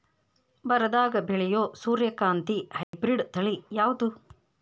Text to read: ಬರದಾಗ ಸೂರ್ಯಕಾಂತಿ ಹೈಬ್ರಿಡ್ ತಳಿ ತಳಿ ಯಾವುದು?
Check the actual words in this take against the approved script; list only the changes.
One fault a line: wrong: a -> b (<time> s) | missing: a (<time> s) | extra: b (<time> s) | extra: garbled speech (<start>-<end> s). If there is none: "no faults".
extra: ಬೆಳೆಯೋ (1.2 s)
missing: ತಳಿ (3.5 s)